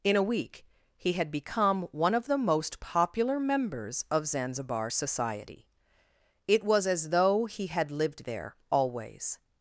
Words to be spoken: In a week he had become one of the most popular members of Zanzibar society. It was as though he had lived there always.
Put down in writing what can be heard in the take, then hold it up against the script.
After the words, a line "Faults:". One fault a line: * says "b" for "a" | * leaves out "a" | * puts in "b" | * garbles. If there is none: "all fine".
In a week he had become one of the most popular members of Zanzibar society. It was as though he had lived there always.
Faults:
all fine